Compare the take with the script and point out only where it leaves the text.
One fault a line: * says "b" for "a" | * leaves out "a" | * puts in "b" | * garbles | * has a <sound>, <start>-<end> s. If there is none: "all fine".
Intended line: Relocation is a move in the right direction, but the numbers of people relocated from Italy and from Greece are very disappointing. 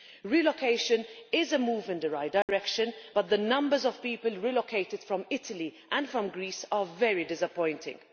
* has a dropout, 2.4-2.5 s